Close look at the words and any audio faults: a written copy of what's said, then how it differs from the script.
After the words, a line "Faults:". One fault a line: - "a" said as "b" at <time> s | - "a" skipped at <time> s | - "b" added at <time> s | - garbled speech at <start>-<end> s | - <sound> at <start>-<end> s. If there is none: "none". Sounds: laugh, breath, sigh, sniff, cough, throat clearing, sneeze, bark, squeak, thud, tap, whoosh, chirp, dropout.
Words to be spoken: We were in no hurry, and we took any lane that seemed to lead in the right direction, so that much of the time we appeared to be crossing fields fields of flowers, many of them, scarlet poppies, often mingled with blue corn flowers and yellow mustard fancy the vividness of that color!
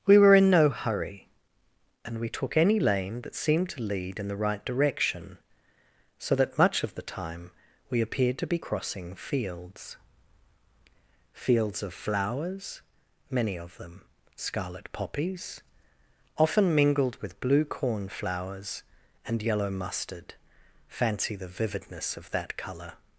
We were in no hurry, and we took any lane that seemed to lead in the right direction, so that much of the time we appeared to be crossing fields fields of flowers, many of them, scarlet poppies, often mingled with blue corn flowers and yellow mustard fancy the vividness of that color!
Faults:
none